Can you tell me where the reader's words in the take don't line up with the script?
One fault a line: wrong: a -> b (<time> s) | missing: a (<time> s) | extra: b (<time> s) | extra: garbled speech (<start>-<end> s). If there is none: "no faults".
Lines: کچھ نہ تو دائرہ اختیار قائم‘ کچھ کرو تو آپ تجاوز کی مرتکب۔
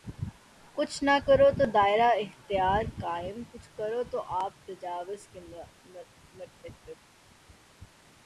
extra: کرو (1.3 s)
wrong: کی -> کے (5.3 s)